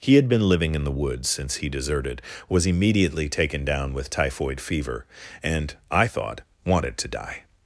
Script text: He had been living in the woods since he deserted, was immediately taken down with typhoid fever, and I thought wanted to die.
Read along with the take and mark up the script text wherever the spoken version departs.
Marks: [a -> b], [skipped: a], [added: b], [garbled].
He had been living in the woods since he deserted, was immediately taken down with typhoid fever, and I thought wanted to die.